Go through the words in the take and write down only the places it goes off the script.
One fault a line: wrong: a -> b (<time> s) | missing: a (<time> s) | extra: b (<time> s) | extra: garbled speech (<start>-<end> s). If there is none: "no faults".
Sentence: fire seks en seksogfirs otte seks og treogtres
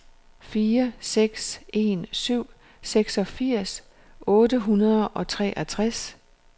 extra: syv (2.1 s)
wrong: seks -> hundrede (4.6 s)